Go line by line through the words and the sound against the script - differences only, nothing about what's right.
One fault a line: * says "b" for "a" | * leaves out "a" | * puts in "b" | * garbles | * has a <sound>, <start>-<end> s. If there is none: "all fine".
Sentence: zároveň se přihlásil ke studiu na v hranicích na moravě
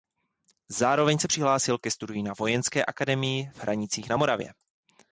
* puts in "vojenské akademii"